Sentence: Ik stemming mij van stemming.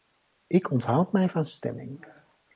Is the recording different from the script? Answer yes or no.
yes